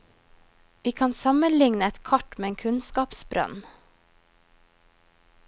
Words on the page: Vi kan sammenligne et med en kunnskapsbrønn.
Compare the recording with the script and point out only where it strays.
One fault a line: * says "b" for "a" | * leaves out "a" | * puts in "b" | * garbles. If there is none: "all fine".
* puts in "kart"